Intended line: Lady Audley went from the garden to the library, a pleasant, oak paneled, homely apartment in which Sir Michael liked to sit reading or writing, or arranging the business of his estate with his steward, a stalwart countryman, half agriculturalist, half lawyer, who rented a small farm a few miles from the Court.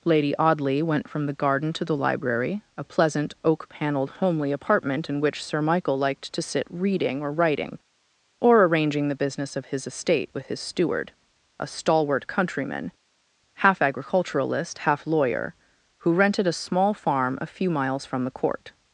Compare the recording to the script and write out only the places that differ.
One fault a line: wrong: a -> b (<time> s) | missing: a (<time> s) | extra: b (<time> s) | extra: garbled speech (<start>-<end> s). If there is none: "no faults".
no faults